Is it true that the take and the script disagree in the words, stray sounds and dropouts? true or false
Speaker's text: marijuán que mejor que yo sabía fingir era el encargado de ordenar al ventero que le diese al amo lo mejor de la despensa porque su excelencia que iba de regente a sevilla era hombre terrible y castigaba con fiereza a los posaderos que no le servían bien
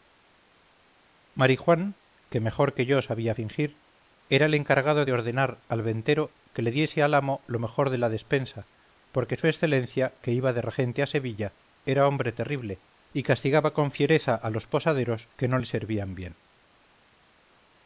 false